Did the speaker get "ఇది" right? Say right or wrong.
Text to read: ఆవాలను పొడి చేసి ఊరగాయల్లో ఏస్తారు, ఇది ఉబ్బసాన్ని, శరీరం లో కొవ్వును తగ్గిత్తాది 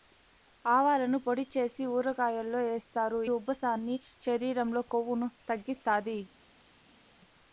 wrong